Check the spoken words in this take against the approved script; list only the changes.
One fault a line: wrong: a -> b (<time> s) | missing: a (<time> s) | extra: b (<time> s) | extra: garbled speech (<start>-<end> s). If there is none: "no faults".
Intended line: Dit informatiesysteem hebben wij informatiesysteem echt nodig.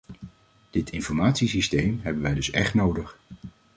wrong: informatiesysteem -> dus (2.3 s)